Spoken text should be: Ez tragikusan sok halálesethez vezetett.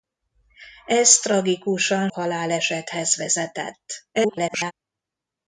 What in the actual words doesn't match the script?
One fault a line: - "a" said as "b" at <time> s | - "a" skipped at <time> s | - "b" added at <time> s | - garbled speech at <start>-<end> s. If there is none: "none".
- "sok" skipped at 2.1 s
- garbled speech at 4.1-4.7 s